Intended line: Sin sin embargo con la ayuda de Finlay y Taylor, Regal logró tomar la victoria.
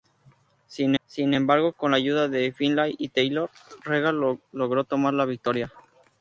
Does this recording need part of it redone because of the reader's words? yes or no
no